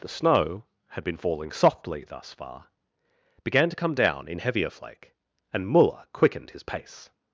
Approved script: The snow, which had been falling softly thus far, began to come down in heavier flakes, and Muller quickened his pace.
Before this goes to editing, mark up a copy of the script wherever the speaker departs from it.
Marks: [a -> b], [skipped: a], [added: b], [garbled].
The snow, [skipped: which] had been falling softly thus far, began to come down in heavier [flakes, -> flake] and Muller quickened his pace.